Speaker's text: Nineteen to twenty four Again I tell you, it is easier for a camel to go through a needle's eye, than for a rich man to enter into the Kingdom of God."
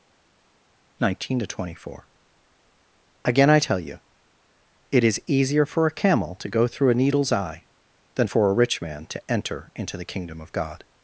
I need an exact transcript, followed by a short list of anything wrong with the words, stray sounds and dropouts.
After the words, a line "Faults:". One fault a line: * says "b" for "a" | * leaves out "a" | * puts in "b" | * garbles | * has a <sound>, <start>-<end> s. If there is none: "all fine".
Nineteen to twenty four Again I tell you, it is easier for a camel to go through a needle's eye, than for a rich man to enter into the Kingdom of God."
Faults:
all fine